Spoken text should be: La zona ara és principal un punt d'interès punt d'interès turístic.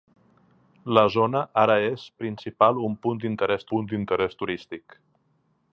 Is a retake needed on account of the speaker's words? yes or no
no